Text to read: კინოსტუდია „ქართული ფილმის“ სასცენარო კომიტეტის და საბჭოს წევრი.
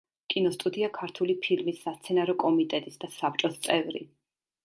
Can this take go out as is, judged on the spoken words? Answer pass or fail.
pass